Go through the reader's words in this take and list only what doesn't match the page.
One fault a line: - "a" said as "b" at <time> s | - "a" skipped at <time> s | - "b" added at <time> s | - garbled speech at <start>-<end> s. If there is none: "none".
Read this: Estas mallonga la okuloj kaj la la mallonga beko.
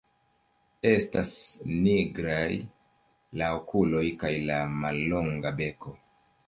- "mallonga" said as "nigraj" at 1.7 s
- "la" skipped at 4.6 s